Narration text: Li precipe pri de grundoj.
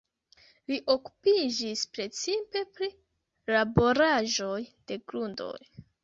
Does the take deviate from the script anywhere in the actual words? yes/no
yes